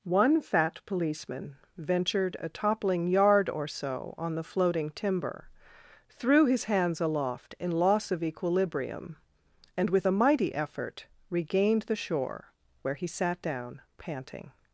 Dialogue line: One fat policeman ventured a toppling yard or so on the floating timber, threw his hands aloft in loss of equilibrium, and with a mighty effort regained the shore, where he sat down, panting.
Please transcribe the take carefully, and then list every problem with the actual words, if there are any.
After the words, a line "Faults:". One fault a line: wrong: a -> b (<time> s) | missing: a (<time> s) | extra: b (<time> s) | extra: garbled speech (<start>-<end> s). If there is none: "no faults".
One fat policeman ventured a toppling yard or so on the floating timber, threw his hands aloft in loss of equilibrium, and with a mighty effort regained the shore, where he sat down, panting.
Faults:
no faults